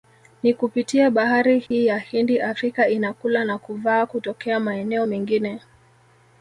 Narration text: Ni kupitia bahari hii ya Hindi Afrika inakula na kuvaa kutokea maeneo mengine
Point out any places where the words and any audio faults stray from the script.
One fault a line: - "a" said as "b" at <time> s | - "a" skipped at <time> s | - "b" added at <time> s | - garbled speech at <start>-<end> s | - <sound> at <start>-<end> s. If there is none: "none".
- dropout at 1.7-1.7 s